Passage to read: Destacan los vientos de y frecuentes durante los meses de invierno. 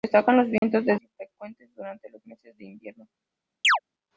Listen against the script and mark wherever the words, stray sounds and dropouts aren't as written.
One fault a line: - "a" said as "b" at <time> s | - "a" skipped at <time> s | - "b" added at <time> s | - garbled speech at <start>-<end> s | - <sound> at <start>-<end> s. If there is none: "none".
- dropout at 0.6-0.6 s
- chirp at 3.6-3.8 s